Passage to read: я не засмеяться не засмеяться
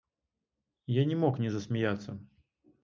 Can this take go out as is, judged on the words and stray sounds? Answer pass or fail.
fail